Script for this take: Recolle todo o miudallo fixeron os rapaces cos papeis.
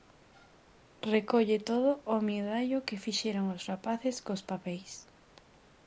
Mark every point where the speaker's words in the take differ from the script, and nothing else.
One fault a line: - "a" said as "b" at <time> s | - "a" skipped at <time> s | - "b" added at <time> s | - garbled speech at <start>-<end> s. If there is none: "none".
- "que" added at 2.9 s